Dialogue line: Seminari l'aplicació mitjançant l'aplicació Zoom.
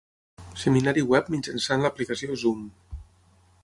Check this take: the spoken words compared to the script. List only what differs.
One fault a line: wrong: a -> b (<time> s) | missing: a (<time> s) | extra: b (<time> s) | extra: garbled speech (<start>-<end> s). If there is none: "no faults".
wrong: l'aplicació -> web (1.1 s)